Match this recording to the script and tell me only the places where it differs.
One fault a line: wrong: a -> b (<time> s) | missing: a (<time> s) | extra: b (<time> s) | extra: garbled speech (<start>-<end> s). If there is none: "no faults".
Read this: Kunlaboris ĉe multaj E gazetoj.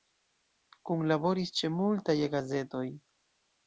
no faults